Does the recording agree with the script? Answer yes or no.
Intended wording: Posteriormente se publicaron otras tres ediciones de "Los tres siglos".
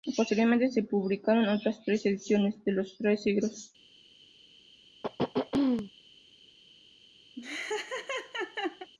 yes